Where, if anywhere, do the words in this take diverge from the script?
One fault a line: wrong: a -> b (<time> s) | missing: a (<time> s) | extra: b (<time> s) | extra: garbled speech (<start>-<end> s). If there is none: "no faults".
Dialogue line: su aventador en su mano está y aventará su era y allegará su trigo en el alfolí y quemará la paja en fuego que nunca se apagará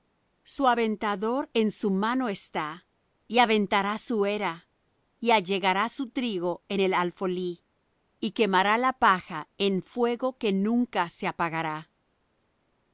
no faults